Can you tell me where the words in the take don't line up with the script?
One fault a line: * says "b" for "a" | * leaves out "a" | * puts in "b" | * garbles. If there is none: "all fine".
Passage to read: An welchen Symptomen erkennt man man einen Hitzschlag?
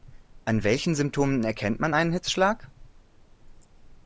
* leaves out "man"